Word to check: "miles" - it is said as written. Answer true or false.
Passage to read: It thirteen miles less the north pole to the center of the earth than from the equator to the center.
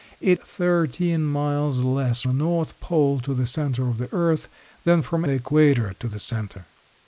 true